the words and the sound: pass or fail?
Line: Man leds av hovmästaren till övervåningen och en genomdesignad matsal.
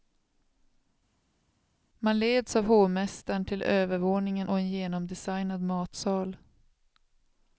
pass